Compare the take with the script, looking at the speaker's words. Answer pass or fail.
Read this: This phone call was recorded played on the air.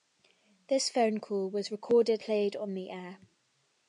pass